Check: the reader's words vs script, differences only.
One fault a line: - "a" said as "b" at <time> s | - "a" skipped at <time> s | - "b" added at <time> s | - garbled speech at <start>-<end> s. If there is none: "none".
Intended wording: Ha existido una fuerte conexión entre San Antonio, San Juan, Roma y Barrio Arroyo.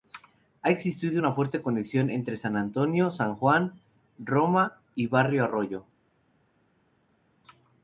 none